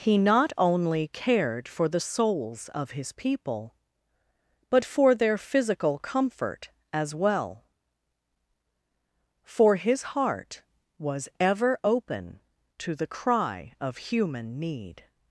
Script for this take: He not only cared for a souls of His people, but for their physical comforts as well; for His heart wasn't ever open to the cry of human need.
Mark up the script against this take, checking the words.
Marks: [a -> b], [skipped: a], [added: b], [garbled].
He not only cared for [a -> the] souls of His people, but for their physical [comforts -> comfort] as well; for His heart [wasn't -> was] ever open to the cry of human need.